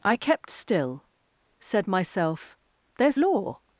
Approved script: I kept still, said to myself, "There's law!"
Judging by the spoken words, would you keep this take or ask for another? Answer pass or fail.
fail